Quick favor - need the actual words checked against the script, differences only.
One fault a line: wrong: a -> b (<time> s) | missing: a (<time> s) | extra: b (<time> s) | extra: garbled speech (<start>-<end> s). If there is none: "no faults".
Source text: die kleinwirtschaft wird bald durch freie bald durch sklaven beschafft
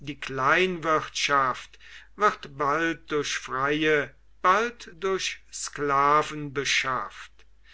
no faults